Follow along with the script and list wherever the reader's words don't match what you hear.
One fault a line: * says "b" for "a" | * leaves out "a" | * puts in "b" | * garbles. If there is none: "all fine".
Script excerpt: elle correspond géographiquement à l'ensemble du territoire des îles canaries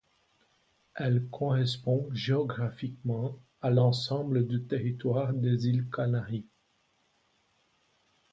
all fine